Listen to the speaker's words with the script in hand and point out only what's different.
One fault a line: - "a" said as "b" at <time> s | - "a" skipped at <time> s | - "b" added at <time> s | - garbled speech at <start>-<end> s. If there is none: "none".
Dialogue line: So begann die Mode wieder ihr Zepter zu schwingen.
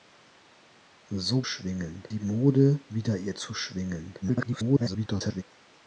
- "begann" said as "schwingen" at 1.4 s
- "Zepter" skipped at 3.4 s
- garbled speech at 4.2-5.4 s